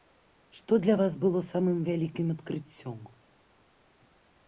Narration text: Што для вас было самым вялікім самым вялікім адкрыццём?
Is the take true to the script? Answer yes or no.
no